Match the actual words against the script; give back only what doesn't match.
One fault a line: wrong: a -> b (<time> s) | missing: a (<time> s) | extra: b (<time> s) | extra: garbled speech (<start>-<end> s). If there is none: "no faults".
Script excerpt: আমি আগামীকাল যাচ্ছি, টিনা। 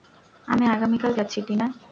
no faults